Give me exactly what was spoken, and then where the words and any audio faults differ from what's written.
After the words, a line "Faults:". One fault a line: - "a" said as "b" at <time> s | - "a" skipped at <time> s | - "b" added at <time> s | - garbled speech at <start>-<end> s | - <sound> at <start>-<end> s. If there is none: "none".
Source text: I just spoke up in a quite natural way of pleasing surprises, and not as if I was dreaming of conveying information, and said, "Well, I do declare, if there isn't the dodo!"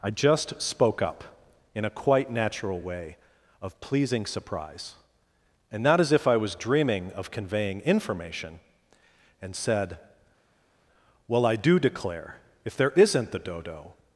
I just spoke up in a quite natural way of pleasing surprise, and not as if I was dreaming of conveying information, and said, "Well, I do declare, if there isn't the dodo!"
Faults:
- "surprises" said as "surprise" at 4.3 s